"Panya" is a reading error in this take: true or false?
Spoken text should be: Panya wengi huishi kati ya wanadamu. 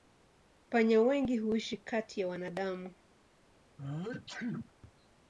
false